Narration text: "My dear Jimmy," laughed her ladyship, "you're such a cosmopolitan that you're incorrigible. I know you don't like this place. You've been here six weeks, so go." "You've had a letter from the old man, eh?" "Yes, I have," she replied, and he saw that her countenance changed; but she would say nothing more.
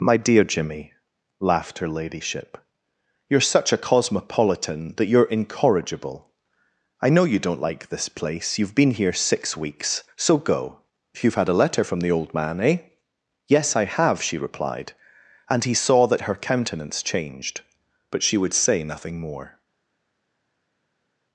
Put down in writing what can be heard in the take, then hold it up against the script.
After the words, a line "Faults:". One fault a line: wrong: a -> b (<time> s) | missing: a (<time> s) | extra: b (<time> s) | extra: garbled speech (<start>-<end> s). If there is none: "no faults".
"My dear Jimmy," laughed her ladyship, "you're such a cosmopolitan that you're incorrigible. I know you don't like this place. You've been here six weeks, so go." "You've had a letter from the old man, eh?" "Yes, I have," she replied, and he saw that her countenance changed; but she would say nothing more.
Faults:
no faults